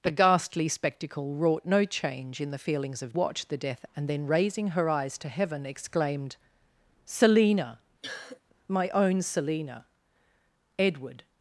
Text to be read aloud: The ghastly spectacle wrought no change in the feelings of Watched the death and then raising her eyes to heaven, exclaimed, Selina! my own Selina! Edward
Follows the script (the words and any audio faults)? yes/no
no